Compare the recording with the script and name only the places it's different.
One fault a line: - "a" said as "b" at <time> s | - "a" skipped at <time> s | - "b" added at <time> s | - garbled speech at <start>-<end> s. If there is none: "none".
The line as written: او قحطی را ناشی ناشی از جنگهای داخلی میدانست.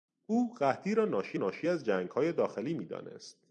none